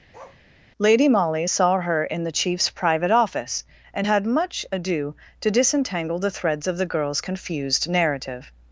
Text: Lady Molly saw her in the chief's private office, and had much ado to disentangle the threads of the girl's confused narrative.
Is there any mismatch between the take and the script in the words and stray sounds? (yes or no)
yes